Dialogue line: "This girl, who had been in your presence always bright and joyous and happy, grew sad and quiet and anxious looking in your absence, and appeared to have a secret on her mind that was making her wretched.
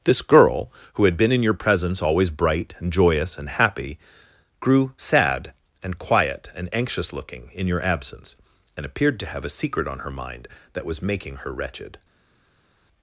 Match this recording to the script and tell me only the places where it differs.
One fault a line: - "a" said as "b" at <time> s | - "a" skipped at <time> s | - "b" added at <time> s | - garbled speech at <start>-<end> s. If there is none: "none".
none